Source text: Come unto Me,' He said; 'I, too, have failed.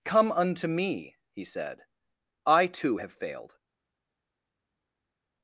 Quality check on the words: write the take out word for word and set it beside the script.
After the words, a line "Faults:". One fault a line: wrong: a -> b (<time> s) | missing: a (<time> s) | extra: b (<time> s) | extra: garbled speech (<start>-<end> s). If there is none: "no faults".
Come unto Me,' He said; 'I, too, have failed.
Faults:
no faults